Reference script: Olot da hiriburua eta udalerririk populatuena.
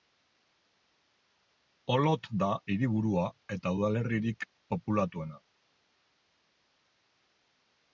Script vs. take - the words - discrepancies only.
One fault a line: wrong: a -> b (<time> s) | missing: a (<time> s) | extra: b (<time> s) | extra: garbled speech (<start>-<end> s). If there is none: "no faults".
no faults